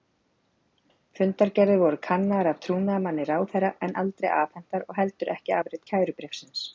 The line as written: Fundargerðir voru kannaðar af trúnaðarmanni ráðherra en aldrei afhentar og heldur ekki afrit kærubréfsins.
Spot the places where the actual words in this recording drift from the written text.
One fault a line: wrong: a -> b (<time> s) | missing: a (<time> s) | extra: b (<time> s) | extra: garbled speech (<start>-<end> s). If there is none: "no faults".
no faults